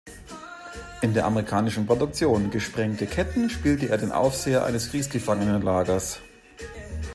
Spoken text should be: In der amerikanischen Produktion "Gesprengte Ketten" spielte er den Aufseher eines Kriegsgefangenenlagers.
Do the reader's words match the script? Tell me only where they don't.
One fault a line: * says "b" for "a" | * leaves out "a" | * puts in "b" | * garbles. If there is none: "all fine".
all fine